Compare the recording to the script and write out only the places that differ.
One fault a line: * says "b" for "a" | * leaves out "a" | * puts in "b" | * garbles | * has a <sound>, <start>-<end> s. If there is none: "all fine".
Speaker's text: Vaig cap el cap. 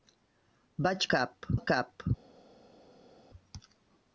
all fine